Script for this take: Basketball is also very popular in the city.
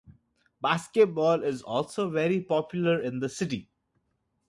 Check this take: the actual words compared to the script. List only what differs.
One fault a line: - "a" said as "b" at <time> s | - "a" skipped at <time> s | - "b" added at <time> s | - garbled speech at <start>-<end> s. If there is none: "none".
none